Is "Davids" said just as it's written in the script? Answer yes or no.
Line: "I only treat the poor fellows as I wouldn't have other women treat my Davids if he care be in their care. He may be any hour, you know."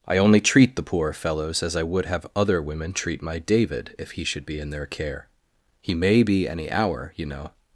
no